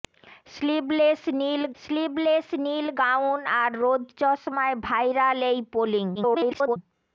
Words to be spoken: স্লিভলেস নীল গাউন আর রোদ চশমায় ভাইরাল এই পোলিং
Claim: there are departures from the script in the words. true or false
true